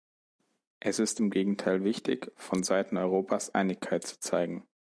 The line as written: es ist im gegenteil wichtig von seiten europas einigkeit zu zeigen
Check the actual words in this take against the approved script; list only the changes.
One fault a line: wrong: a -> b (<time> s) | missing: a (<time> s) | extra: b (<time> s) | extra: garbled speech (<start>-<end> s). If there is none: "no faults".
no faults